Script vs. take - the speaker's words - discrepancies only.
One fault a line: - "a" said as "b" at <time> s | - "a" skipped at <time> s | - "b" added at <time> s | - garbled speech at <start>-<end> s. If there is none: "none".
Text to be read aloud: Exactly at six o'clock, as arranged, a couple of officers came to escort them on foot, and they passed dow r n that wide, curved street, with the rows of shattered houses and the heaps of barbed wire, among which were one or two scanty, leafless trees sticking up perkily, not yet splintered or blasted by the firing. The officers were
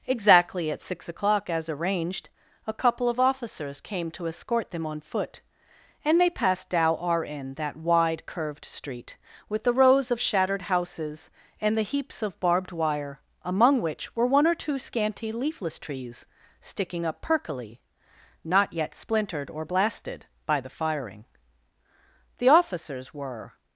none